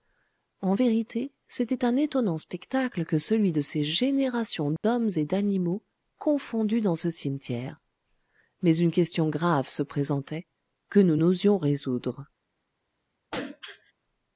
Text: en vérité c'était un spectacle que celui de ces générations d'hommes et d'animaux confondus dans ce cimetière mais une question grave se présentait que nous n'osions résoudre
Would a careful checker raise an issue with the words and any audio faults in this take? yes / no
yes